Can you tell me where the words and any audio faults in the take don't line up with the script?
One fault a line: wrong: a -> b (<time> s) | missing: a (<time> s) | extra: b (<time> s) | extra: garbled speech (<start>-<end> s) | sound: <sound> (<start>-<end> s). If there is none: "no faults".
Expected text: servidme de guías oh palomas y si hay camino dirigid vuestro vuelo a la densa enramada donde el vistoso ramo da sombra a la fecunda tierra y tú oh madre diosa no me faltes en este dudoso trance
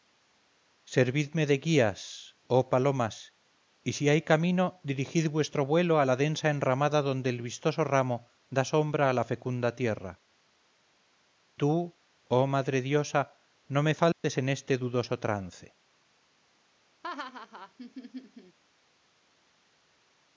missing: y (10.1 s)
sound: dropout (14.1-14.2 s)
sound: laugh (17.0-18.6 s)